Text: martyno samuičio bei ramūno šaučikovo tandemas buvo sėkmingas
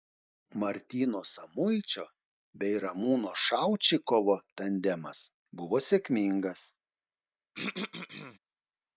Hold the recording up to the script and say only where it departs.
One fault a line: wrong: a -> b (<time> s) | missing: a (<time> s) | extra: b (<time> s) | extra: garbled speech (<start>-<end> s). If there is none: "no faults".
no faults